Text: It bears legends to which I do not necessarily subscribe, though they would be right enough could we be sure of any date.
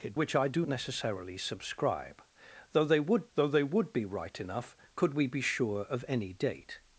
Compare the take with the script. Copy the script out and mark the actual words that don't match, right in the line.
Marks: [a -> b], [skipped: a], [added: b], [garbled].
It [skipped: bears legends to] which I do [skipped: not] necessarily subscribe, though they would [added: though they would] be right enough could we be sure of any date.